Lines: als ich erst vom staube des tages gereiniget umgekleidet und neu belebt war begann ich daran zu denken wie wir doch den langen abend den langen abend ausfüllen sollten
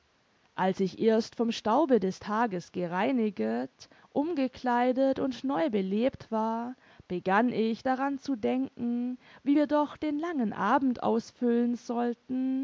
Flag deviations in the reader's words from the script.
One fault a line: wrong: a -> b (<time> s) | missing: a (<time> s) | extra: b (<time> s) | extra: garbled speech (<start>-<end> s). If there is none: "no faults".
missing: den langen abend (11.0 s)